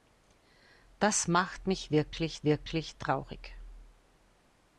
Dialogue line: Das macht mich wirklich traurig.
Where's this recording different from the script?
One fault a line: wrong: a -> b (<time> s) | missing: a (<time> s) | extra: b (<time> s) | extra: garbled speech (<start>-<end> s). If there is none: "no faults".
extra: wirklich (2.4 s)